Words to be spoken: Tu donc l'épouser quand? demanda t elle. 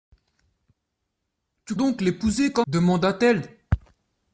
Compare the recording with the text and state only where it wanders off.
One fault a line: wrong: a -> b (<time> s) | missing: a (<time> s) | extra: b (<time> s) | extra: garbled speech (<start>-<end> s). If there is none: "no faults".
no faults